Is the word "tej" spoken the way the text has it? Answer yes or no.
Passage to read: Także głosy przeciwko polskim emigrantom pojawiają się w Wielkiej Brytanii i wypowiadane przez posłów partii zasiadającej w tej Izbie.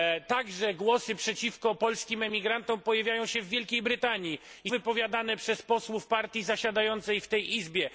yes